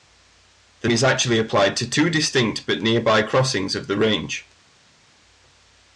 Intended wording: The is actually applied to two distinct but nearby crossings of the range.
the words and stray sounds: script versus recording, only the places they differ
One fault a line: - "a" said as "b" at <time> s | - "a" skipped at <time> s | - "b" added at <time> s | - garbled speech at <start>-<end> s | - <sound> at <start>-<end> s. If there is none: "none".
none